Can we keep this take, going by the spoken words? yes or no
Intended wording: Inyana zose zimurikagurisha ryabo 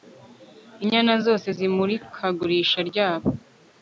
yes